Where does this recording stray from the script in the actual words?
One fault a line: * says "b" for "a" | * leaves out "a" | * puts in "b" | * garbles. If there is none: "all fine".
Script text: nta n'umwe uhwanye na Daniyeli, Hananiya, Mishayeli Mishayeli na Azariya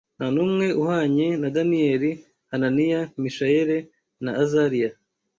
* leaves out "Mishayeli"